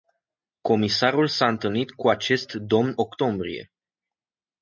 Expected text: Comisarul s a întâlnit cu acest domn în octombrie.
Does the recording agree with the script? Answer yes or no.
no